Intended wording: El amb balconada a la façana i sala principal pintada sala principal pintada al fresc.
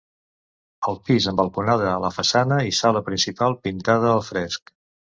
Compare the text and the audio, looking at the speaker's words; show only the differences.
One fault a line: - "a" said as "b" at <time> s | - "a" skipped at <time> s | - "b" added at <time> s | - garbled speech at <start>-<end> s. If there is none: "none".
- "pis" added at 1.1 s
- "sala principal pintada" skipped at 4.1 s